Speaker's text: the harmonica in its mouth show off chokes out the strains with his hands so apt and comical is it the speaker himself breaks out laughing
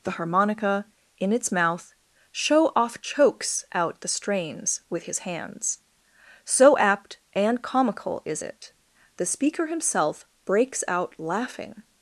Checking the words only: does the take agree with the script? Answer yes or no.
yes